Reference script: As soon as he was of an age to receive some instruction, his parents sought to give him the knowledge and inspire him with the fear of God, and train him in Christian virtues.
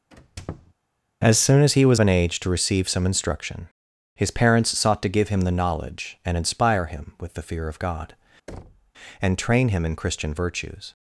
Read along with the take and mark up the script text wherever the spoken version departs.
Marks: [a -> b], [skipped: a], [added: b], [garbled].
As soon as he was [skipped: of] an age to receive some instruction, his parents sought to give him the knowledge and inspire him with the fear of God, and train him in Christian virtues.